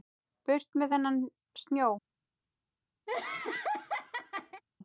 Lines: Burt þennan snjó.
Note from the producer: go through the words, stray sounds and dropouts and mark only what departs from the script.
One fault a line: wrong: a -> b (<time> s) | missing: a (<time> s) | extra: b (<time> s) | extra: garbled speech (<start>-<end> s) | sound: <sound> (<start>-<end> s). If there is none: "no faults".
extra: með (0.8 s)
sound: laugh (3.1-4.6 s)